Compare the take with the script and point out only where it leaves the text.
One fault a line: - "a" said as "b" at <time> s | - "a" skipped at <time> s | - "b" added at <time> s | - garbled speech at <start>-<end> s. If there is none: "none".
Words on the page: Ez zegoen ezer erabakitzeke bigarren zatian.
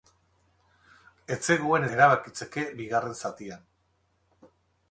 - "ezer" skipped at 1.9 s